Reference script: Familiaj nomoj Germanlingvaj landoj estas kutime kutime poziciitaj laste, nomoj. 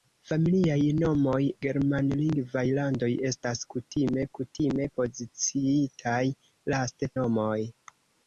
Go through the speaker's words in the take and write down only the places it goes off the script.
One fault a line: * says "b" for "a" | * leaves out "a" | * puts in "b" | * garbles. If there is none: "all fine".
all fine